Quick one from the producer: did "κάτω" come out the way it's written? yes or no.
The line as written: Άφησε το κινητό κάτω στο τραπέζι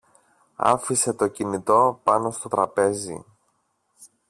no